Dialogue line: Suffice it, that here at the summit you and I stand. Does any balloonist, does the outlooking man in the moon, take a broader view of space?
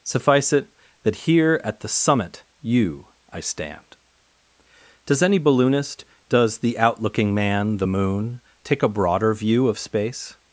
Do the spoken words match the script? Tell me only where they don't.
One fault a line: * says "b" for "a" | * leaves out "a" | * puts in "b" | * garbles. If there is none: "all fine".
* leaves out "and"
* leaves out "in"